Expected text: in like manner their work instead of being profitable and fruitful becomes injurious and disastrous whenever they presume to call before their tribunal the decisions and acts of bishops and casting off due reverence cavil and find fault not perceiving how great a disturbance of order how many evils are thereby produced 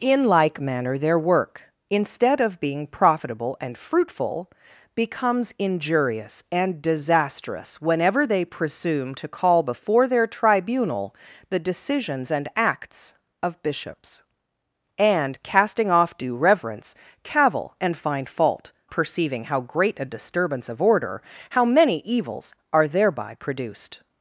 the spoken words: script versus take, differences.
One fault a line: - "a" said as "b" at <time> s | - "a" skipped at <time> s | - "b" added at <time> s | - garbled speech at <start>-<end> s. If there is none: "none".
- "not" skipped at 18.7 s